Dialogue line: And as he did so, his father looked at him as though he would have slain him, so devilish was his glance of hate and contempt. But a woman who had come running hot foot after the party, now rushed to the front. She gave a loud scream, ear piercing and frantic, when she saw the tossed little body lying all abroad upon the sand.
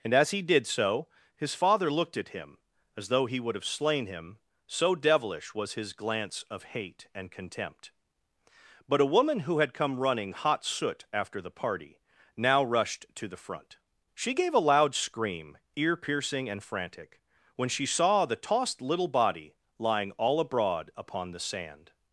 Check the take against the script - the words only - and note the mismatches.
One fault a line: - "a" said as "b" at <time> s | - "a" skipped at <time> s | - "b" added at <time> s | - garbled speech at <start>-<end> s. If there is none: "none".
- "foot" said as "soot" at 10.6 s